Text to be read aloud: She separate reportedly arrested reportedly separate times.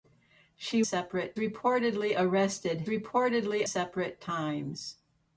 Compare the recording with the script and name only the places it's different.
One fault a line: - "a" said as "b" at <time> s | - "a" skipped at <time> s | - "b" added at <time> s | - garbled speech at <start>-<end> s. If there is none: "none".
none